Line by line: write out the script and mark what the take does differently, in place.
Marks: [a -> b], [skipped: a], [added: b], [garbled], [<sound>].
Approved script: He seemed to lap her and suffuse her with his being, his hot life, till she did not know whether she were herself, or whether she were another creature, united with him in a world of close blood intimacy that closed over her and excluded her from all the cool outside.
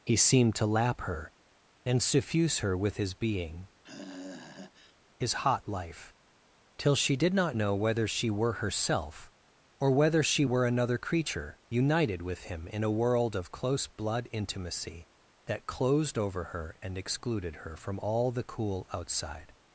He seemed to lap her and suffuse her with his being, [sigh] his hot life, till she did not know whether she were herself, or whether she were another creature, united with him in a world of close blood intimacy that closed over her and excluded her from all the cool outside.